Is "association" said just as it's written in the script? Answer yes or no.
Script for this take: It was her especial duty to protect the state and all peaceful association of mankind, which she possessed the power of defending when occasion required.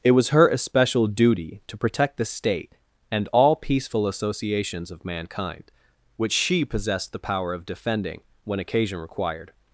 no